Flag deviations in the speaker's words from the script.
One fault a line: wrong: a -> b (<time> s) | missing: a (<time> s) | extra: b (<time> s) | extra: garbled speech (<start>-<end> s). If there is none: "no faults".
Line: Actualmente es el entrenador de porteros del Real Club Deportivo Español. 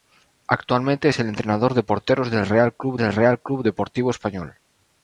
extra: del Real Club (3.0 s)